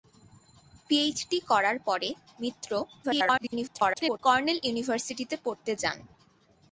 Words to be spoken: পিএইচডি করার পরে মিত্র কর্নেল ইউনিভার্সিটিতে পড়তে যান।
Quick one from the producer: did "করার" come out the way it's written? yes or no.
yes